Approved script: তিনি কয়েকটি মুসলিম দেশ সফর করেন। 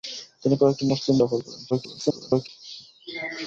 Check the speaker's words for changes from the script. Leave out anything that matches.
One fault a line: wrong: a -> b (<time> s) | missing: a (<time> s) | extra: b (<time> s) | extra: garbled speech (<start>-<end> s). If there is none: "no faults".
missing: দেশ (1.1 s)
extra: garbled speech (1.7-2.5 s)